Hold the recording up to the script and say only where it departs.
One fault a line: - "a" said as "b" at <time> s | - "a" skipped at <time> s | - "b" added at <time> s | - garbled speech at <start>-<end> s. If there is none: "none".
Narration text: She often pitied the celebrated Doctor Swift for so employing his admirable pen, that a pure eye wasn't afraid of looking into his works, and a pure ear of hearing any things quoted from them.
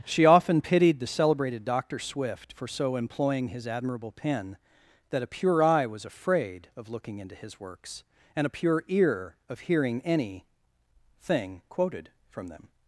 - "wasn't" said as "was" at 5.9 s
- "things" said as "thing" at 11.2 s